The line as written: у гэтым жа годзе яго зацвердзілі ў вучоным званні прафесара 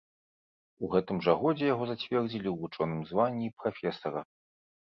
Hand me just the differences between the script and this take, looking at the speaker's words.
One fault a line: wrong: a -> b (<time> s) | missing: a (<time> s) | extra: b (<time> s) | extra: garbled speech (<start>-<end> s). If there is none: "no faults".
no faults